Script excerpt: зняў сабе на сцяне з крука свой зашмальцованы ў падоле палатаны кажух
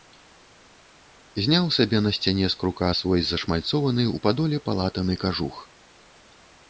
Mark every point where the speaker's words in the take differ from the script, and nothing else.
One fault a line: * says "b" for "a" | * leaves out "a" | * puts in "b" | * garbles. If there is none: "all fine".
all fine